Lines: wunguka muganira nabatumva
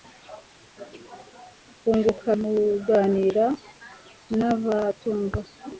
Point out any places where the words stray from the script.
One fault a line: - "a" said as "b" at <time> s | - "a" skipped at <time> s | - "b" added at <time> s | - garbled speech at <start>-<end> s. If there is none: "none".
none